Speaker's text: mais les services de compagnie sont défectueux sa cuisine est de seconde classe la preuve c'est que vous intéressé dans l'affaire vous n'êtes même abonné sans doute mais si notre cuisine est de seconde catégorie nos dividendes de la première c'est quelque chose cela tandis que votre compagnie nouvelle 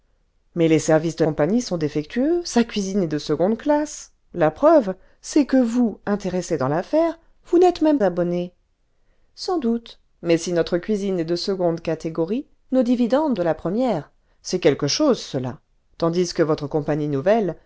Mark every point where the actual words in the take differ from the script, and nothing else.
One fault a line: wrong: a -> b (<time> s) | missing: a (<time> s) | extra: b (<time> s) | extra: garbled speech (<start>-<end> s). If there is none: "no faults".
no faults